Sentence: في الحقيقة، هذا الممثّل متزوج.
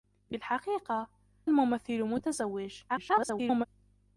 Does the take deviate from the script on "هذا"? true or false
true